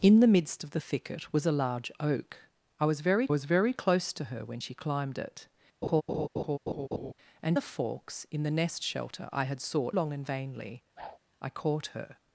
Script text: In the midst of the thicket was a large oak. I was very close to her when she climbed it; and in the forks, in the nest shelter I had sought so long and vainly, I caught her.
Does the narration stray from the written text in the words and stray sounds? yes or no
yes